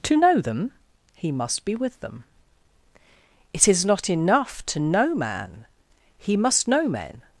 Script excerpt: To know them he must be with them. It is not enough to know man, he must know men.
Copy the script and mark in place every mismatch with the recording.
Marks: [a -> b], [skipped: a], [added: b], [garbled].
To know them he must be with them. It is not enough to know man, he must know men.